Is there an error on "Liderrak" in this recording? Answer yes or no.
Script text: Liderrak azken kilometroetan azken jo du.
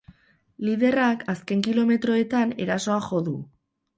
no